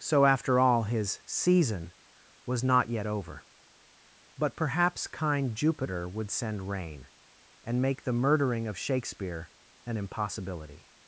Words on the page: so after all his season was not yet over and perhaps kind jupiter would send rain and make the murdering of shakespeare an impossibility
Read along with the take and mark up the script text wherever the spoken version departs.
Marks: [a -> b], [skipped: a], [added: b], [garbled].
so after all his season was not yet over [and -> but] perhaps kind jupiter would send rain and make the murdering of shakespeare an impossibility